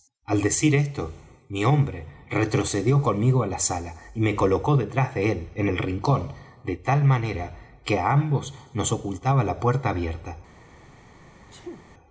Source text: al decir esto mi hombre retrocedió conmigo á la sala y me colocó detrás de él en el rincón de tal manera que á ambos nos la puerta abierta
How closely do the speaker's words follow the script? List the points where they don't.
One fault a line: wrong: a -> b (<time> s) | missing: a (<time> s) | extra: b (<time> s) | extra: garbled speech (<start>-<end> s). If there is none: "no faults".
extra: ocultaba (8.9 s)